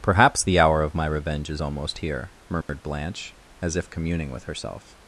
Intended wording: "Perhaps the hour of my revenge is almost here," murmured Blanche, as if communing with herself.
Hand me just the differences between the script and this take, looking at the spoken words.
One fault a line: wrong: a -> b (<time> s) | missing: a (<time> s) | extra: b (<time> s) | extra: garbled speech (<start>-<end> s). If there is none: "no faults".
no faults